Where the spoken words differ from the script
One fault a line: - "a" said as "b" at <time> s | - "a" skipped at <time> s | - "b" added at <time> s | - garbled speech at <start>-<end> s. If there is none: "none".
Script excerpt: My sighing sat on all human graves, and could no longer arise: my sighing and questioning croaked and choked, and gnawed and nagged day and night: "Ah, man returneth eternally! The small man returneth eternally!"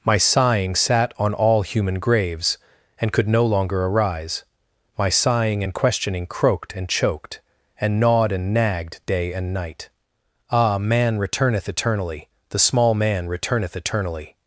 none